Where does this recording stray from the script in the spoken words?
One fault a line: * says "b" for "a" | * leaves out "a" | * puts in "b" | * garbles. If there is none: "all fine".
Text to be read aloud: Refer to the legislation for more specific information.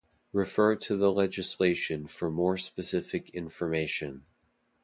all fine